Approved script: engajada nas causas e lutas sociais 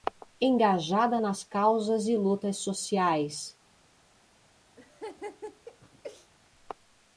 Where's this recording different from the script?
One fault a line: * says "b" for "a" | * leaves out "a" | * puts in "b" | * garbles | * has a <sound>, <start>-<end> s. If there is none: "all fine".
* has a laugh, 4.8-6.3 s